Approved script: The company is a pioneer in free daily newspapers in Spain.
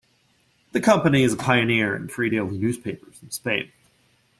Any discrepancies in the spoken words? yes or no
no